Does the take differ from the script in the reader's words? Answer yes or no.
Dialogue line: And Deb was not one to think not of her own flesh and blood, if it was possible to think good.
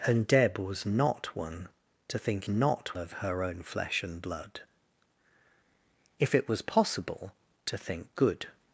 no